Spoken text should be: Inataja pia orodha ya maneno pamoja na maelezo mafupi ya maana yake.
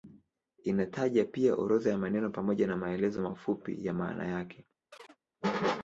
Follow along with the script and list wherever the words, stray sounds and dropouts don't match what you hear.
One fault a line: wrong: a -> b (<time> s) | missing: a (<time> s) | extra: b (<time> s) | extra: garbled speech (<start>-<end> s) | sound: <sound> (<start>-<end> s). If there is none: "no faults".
sound: chirp (4.9-5.2 s)